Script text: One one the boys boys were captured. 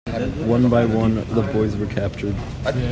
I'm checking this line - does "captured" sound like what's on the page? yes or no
yes